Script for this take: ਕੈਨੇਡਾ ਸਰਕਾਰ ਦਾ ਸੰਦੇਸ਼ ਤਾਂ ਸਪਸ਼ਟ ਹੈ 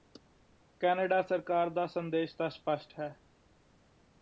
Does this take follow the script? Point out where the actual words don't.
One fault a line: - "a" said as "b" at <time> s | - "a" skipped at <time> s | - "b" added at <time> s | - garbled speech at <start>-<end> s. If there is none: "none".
none